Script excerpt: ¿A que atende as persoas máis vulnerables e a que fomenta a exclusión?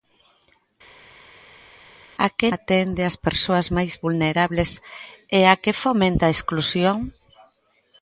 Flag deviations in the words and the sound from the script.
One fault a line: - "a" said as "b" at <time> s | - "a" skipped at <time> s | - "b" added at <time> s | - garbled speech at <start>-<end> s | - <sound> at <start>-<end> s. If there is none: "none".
none